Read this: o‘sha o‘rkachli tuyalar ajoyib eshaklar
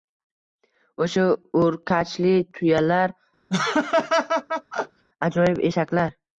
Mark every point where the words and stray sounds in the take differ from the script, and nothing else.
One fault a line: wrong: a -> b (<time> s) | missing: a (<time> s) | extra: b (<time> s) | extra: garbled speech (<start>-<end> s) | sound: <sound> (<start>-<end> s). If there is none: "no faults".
sound: laugh (3.5-5.0 s)